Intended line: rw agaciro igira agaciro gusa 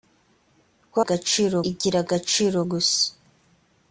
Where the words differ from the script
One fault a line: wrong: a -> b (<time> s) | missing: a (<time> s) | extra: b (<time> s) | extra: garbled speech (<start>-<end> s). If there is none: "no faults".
no faults